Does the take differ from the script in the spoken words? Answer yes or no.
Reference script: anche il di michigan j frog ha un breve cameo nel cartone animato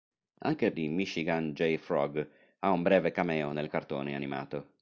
no